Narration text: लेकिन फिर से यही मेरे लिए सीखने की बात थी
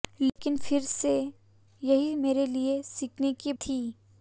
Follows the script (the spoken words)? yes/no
no